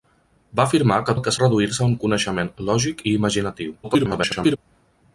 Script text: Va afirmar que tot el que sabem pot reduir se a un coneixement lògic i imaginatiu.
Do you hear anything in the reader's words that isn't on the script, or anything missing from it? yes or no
yes